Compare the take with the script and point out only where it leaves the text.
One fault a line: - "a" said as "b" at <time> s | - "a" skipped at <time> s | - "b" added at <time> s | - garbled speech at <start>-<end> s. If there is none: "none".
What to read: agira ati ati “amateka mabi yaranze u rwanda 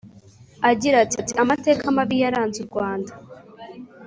none